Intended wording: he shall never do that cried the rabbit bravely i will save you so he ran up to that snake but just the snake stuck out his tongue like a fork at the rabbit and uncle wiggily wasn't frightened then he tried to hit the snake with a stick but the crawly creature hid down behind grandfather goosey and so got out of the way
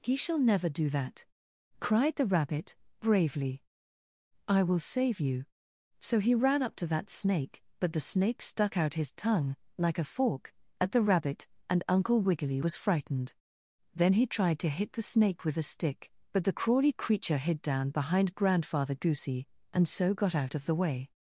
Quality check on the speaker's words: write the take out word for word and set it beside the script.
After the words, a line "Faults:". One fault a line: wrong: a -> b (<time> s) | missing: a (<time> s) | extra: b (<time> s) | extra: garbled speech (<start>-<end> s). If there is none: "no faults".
he shall never do that cried the rabbit bravely i will save you so he ran up to that snake but the snake stuck out his tongue like a fork at the rabbit and uncle wiggily was frightened then he tried to hit the snake with a stick but the crawly creature hid down behind grandfather goosey and so got out of the way
Faults:
missing: just (7.9 s)
wrong: wasn't -> was (12.6 s)